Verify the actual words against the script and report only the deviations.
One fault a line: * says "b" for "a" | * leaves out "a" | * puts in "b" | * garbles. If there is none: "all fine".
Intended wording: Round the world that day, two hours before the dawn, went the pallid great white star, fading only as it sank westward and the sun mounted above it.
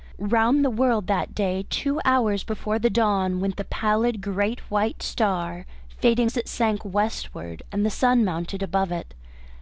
* leaves out "only"